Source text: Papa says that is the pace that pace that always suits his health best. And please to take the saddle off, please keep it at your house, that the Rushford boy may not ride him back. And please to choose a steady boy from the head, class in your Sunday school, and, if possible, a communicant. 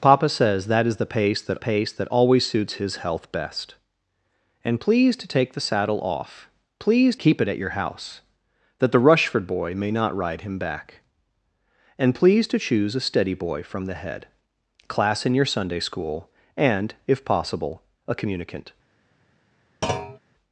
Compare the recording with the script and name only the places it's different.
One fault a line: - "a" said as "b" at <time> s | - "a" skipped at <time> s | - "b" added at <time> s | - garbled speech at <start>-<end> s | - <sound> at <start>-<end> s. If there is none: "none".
- thud at 19.8-20.2 s